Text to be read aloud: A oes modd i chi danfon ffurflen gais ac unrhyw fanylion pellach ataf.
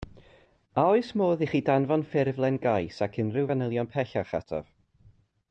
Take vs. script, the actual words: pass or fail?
pass